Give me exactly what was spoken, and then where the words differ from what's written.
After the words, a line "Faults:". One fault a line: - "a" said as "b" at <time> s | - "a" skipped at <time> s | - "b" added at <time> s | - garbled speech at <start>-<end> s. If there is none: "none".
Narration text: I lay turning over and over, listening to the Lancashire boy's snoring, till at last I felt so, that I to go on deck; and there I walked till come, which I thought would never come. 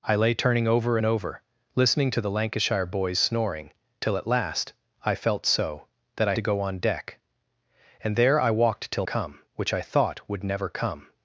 I lay turning over and over, listening to the Lancashire boy's snoring, till at last I felt so, that I to go on deck; and there I walked till come, which I thought would never come.
Faults:
none